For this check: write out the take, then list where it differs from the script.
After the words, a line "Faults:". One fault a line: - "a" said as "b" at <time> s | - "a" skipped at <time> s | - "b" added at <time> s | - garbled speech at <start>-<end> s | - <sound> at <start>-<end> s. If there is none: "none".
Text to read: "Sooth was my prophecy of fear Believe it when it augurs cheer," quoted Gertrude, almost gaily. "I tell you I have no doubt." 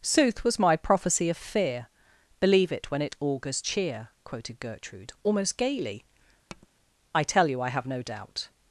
"Sooth was my prophecy of fear Believe it when it augurs cheer," quoted Gertrude, almost gaily. "I tell you I have no doubt."
Faults:
- tap at 6.5-6.7 s